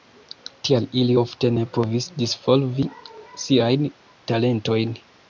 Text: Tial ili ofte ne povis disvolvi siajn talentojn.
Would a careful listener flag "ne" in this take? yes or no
no